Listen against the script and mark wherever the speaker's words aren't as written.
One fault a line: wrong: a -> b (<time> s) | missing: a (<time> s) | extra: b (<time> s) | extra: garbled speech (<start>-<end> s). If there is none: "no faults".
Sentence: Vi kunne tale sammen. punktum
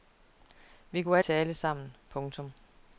no faults